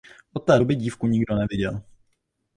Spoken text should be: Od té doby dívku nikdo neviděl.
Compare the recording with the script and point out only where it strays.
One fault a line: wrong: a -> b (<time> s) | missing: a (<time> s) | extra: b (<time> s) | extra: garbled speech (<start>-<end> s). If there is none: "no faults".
no faults